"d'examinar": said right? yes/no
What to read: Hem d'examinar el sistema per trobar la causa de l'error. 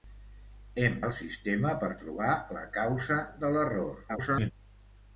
no